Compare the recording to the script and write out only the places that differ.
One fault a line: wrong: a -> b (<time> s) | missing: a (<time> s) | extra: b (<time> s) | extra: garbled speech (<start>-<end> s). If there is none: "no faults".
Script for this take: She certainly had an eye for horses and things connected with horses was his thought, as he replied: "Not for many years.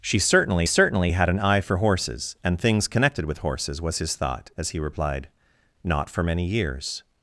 extra: certainly (0.6 s)